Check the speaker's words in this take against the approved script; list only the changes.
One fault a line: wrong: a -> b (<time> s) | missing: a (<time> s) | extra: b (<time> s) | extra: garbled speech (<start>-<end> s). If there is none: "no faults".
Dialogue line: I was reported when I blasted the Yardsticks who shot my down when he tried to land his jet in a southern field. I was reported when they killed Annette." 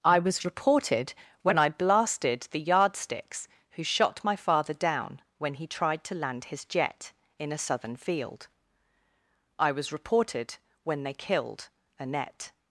extra: father (4.3 s)